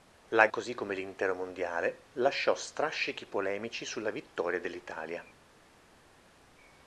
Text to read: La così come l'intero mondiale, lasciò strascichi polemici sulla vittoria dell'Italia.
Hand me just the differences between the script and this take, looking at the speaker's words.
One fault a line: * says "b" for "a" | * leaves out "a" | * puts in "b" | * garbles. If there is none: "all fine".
all fine